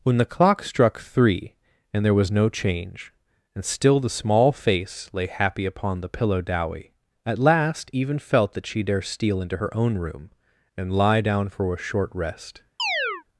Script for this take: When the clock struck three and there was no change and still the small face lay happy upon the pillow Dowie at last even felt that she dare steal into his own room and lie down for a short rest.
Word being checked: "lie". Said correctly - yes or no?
yes